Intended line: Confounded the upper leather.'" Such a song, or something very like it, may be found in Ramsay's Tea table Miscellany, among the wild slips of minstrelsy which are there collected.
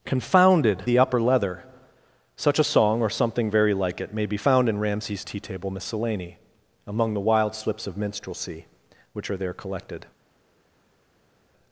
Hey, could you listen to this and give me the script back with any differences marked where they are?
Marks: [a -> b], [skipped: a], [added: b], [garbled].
Confounded the upper leather.'" Such a song, or something very like it, may be found in Ramsay's Tea table Miscellany, among the wild slips of minstrelsy which are there collected.